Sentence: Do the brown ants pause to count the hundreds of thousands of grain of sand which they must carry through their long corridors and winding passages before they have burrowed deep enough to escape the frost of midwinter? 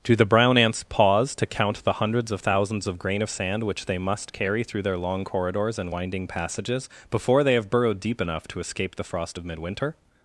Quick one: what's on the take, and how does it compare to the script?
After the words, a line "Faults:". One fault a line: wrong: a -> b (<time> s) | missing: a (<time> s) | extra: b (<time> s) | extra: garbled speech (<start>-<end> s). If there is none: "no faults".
Do the brown ants pause to count the hundreds of thousands of grain of sand which they must carry through their long corridors and winding passages before they have burrowed deep enough to escape the frost of midwinter?
Faults:
no faults